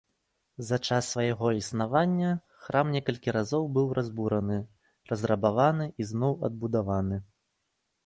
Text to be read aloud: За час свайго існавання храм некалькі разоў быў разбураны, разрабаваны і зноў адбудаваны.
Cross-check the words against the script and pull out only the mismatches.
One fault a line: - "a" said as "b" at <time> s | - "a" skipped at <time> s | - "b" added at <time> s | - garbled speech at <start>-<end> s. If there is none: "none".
none